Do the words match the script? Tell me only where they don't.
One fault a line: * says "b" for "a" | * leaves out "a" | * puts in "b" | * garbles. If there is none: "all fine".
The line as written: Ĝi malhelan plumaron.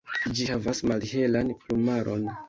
* puts in "havas"